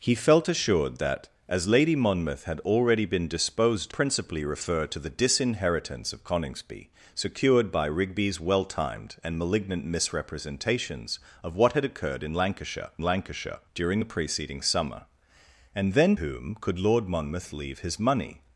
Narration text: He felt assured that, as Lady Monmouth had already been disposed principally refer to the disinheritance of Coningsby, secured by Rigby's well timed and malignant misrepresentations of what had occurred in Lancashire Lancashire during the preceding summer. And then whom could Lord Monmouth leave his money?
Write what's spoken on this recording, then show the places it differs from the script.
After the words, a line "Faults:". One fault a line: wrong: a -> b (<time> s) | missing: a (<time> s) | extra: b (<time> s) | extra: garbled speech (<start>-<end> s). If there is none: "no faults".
He felt assured that, as Lady Monmouth had already been disposed principally refer to the disinheritance of Coningsby, secured by Rigby's well timed and malignant misrepresentations of what had occurred in Lancashire Lancashire during the preceding summer. And then whom could Lord Monmouth leave his money?
Faults:
no faults